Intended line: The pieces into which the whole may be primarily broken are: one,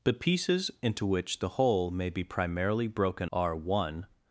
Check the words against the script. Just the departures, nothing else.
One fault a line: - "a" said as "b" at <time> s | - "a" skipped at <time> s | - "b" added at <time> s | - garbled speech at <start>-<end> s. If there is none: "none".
none